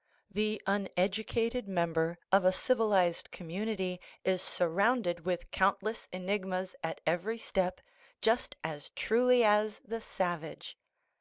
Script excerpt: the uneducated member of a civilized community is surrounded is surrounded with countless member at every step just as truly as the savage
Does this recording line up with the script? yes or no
no